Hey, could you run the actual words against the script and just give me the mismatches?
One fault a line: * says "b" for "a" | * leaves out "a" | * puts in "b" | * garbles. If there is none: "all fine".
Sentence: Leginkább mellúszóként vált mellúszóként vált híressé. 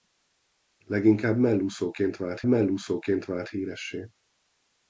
all fine